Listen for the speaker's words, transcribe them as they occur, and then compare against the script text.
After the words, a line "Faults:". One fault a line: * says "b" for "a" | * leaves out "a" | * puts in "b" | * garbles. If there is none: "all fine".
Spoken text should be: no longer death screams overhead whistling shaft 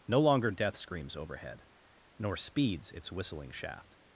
no longer death screams overhead nor speeds its whistling shaft
Faults:
* puts in "nor speeds its"